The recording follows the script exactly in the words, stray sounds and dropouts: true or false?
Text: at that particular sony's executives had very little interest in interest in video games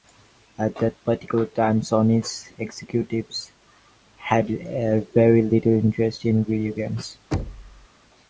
false